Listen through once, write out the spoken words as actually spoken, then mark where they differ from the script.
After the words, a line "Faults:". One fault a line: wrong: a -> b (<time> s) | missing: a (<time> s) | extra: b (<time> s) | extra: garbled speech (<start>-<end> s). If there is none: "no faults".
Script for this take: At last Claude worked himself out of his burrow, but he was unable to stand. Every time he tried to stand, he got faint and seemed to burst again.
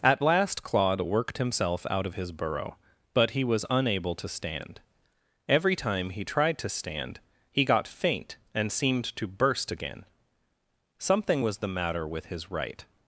At last Claude worked himself out of his burrow, but he was unable to stand. Every time he tried to stand, he got faint and seemed to burst again. Something was the matter with his right
Faults:
extra: Something was the matter with his right (11.0 s)